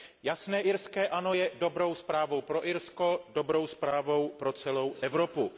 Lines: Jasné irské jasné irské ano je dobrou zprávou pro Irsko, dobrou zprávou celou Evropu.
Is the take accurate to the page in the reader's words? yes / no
no